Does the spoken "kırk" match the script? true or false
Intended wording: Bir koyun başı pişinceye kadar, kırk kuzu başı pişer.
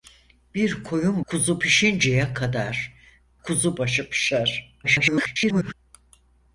false